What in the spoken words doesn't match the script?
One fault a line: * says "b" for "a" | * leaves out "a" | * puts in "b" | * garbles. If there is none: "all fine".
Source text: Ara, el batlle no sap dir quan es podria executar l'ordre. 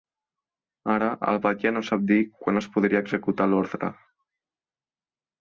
all fine